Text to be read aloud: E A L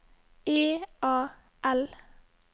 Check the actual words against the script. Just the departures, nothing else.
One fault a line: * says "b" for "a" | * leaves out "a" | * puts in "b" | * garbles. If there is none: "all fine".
all fine